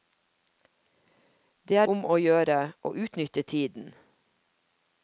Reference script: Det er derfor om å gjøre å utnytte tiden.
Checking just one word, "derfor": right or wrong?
wrong